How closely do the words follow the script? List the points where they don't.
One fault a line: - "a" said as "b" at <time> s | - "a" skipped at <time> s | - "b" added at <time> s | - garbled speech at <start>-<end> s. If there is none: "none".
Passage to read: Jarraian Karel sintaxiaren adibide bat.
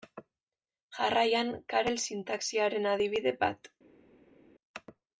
none